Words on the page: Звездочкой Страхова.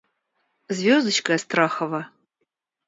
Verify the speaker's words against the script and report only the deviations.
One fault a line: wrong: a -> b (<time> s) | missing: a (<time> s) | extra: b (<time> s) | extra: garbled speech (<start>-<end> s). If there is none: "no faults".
no faults